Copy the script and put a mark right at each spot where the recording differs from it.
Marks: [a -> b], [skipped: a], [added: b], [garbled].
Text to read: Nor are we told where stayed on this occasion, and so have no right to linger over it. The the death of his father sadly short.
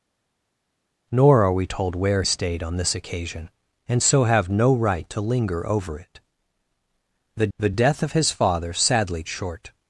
Nor are we told where stayed on this occasion, and so have no right to linger over it. The the death of his father sadly short.